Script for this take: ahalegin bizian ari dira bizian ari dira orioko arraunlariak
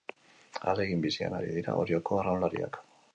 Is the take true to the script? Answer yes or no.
no